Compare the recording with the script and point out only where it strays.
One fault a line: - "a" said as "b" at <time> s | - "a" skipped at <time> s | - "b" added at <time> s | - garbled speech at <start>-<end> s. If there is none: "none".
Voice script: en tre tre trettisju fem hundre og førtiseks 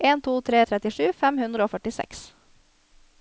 - "to" added at 0.2 s